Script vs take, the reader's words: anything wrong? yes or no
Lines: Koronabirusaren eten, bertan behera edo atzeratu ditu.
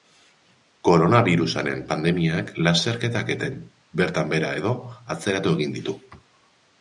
yes